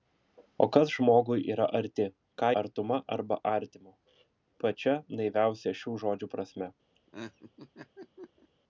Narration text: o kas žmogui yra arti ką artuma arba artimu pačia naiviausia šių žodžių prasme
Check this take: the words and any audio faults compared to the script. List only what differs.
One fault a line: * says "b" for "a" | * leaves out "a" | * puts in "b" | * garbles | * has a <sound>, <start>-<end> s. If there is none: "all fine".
* has a laugh, 6.9-8.5 s